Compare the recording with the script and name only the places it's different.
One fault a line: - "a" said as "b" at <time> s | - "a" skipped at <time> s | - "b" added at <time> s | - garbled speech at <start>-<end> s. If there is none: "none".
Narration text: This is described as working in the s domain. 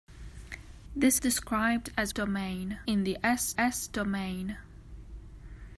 - "is" skipped at 1.2 s
- "working" said as "domain" at 2.1 s
- "s" added at 3.6 s